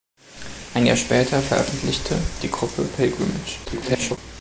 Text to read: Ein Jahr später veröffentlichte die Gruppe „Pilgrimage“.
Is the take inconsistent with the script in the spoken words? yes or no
yes